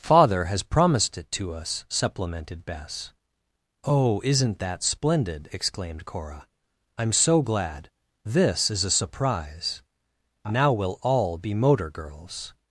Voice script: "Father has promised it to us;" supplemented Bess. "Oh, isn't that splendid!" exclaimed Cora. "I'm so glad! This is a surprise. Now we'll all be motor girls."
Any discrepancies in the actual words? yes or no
no